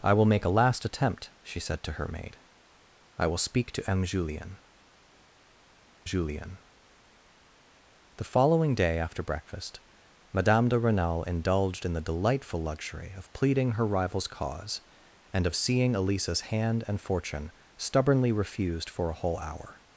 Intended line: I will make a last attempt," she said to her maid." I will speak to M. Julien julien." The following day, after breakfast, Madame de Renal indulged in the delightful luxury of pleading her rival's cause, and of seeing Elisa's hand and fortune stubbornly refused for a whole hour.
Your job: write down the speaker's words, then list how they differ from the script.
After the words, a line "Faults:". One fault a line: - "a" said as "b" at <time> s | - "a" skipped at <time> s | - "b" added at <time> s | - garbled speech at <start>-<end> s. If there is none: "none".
I will make a last attempt," she said to her maid." I will speak to M. Julien julien." The following day, after breakfast, Madame de Renal indulged in the delightful luxury of pleading her rival's cause, and of seeing Elisa's hand and fortune stubbornly refused for a whole hour.
Faults:
none